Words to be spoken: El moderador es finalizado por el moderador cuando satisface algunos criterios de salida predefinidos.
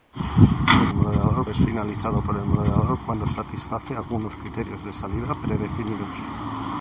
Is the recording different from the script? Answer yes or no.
no